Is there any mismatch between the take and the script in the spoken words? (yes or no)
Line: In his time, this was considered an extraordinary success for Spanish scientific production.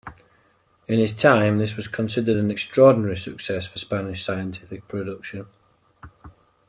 no